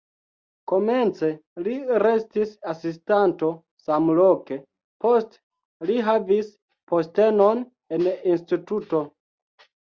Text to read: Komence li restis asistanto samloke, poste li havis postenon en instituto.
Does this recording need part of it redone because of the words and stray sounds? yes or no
no